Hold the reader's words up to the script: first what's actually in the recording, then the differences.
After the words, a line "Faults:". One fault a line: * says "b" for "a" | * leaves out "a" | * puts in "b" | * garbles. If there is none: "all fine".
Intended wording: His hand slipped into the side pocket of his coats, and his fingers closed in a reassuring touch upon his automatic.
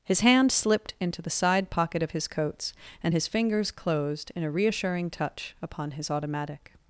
His hand slipped into the side pocket of his coats, and his fingers closed in a reassuring touch upon his automatic.
Faults:
all fine